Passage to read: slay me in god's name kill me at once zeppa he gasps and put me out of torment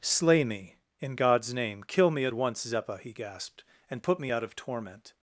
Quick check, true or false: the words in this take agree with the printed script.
false